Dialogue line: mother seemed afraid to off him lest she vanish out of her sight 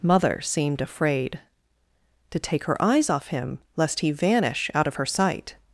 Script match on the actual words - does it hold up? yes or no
no